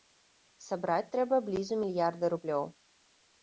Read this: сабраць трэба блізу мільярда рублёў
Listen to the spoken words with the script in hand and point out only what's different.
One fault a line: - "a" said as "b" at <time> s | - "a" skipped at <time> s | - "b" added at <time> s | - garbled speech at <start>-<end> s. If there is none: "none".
none